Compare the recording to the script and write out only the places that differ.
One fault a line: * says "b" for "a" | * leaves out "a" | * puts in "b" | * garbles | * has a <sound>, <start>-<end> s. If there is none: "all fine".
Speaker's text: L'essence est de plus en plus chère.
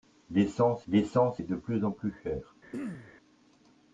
* puts in "l'essence"
* has a throat clearing, 2.7-3.1 s